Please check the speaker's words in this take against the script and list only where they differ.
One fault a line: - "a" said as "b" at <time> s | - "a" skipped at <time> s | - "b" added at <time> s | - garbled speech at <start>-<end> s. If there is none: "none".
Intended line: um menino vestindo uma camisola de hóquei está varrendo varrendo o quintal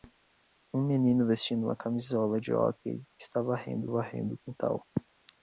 none